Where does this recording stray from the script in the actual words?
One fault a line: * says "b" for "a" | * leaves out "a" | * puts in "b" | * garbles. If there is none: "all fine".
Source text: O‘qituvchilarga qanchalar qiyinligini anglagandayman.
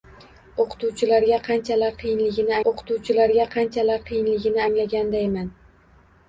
* puts in "o‘qituvchilarga qanchalar qiyinligini"